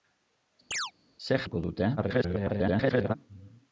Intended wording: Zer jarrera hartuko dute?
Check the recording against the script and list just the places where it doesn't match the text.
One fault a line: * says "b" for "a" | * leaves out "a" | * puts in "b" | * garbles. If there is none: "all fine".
* leaves out "jarrera"
* garbles